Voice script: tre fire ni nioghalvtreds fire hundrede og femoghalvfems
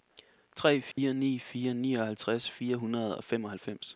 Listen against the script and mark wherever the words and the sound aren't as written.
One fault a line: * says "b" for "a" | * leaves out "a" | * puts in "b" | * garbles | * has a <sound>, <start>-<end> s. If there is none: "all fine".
* has a dropout, 0.9-1.0 s
* puts in "fire"